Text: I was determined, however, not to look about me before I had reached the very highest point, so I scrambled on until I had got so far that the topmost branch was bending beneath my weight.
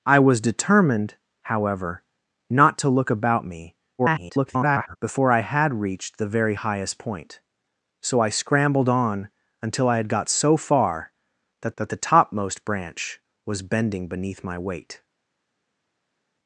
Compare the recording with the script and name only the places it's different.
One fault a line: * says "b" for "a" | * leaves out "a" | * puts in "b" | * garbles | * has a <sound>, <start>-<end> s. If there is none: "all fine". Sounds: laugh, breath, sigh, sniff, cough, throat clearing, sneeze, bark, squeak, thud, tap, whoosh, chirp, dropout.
* garbles
* puts in "that"